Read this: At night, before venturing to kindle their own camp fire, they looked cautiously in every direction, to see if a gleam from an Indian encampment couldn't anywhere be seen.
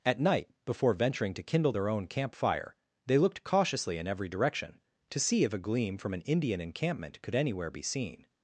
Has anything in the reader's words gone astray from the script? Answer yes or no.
yes